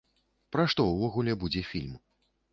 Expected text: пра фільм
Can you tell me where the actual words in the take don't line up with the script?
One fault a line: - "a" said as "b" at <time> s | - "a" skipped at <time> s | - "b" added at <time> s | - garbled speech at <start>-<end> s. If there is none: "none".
- "што ўвогуле будзе" added at 0.7 s